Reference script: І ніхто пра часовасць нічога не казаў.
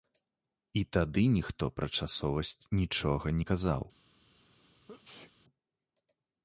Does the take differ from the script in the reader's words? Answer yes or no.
yes